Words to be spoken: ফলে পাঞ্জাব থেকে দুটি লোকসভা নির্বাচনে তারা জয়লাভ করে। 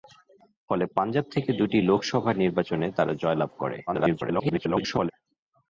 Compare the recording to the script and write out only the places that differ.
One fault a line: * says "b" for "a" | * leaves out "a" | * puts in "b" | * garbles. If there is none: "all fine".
* garbles